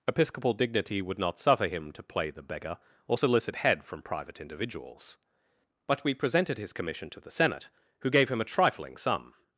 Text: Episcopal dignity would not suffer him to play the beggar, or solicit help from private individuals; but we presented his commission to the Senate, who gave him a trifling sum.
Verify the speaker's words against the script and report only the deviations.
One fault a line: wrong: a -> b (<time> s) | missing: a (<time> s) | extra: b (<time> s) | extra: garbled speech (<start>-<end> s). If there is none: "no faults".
wrong: help -> head (3.6 s)